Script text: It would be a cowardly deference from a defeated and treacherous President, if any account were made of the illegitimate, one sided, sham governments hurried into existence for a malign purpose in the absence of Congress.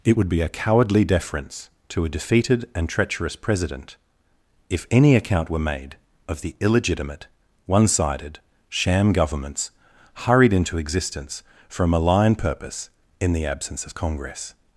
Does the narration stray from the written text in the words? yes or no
yes